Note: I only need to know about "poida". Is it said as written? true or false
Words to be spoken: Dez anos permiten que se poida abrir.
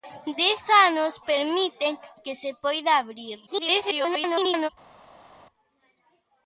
true